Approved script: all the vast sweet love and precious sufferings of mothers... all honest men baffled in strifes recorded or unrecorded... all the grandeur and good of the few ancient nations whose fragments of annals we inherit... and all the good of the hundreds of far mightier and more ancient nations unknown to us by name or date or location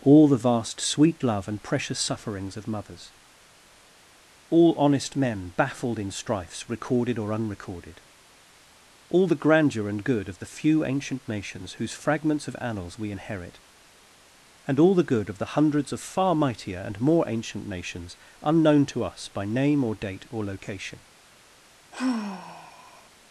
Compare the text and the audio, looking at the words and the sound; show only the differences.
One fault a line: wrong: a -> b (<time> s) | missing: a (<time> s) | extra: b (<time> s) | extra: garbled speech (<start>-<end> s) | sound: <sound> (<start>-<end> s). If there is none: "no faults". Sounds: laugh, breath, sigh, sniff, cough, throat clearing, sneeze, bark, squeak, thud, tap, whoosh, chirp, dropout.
sound: sigh (21.9-23.1 s)